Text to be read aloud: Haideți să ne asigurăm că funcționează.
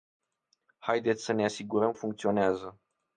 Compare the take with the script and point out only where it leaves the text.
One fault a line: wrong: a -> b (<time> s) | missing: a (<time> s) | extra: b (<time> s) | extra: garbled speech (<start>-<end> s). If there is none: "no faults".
missing: că (1.9 s)